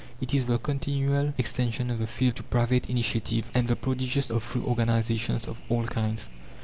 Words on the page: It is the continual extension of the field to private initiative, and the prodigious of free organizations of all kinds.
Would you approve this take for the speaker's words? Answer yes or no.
yes